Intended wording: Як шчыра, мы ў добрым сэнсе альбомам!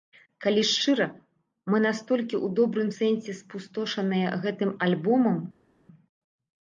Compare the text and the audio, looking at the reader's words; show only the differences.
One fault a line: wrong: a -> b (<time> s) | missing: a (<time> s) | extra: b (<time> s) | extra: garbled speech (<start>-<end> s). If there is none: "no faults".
wrong: Як -> Калі (0.4 s)
extra: настолькі (1.9 s)
extra: спустошаныя гэтым (3.4 s)